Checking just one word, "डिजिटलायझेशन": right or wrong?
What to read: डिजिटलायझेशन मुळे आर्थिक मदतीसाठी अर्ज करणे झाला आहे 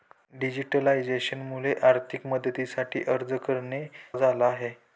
right